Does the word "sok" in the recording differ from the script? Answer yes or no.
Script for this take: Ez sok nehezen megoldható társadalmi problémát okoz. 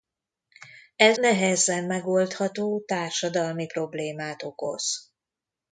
yes